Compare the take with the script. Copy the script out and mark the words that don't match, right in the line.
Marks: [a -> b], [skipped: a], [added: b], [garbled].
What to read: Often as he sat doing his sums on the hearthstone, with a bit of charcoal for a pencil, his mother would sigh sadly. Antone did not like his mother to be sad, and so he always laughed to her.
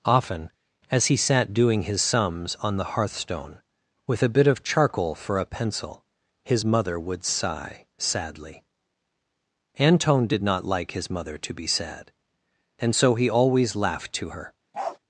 Often as he sat doing his sums on the hearthstone, with a bit of charcoal for a pencil, his mother would sigh sadly. Antone did not like his mother to be sad, and so he always laughed to her.